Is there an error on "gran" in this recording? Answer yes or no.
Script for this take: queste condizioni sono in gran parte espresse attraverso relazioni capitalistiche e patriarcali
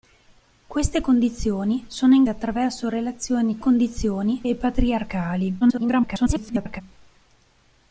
yes